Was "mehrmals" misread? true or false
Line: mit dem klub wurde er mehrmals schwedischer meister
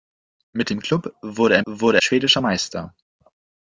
true